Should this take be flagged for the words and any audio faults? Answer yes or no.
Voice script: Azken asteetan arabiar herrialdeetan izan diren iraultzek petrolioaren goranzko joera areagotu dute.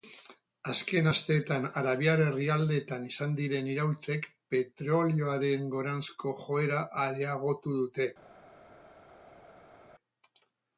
no